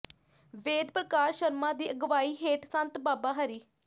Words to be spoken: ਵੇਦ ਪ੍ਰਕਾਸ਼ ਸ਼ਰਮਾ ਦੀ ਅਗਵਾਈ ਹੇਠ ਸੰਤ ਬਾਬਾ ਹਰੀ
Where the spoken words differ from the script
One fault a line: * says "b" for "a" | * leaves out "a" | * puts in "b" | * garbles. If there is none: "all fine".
all fine